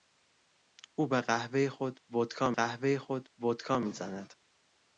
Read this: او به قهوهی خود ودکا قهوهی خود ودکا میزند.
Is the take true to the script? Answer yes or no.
yes